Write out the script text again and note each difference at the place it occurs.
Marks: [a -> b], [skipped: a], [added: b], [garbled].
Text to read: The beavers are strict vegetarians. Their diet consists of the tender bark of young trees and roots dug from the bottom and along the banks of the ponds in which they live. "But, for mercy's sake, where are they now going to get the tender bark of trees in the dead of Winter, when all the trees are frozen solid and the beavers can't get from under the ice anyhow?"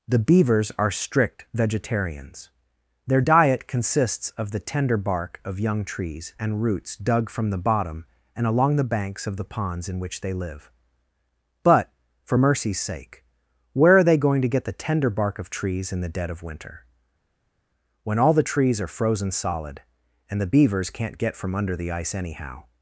The beavers are strict vegetarians. Their diet consists of the tender bark of young trees and roots dug from the bottom and along the banks of the ponds in which they live. "But, for mercy's sake, where are they [skipped: now] going to get the tender bark of trees in the dead of Winter, when all the trees are frozen solid and the beavers can't get from under the ice anyhow?"